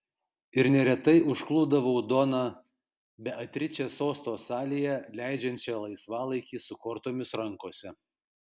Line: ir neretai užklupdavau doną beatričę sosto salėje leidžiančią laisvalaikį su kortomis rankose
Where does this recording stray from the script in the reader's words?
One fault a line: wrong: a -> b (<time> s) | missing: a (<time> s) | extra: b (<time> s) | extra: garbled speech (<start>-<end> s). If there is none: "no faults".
no faults